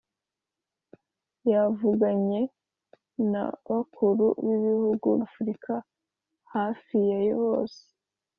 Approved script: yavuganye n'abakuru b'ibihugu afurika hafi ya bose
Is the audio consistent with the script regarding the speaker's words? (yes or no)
yes